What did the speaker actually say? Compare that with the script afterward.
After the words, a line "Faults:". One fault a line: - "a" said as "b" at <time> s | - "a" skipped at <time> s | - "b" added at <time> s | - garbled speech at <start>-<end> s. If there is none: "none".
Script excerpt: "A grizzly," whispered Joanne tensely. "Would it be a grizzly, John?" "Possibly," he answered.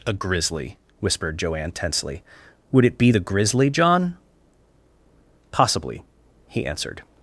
"A grizzly," whispered Joanne tensely. "Would it be the grizzly, John?" "Possibly," he answered.
Faults:
- "a" said as "the" at 3.1 s